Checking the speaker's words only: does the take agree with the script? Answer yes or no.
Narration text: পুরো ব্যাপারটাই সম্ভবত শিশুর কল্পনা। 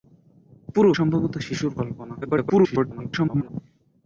no